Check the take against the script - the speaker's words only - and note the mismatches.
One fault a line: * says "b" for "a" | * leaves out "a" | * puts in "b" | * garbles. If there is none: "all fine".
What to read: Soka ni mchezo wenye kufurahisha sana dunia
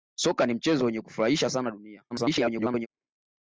* garbles